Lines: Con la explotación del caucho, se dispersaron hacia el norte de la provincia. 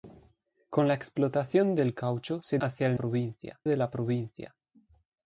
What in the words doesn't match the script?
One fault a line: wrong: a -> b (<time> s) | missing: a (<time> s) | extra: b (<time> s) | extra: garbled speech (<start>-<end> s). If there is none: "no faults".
missing: dispersaron (2.6 s)
wrong: norte -> provincia (2.9 s)